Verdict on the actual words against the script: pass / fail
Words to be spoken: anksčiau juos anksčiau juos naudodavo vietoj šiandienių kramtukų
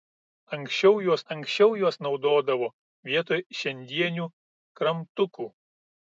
pass